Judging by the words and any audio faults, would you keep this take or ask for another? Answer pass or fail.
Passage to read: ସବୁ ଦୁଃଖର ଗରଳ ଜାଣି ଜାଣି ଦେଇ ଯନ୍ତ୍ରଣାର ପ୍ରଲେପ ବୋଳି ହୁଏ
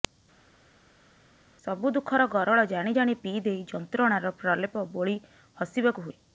fail